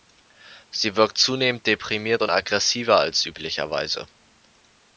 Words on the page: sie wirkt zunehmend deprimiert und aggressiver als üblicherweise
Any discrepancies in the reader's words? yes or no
no